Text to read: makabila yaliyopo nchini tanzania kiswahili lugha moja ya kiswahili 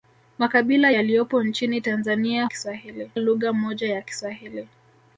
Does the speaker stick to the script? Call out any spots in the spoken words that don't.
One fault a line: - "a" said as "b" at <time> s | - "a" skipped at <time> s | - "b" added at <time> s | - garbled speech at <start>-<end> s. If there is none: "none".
none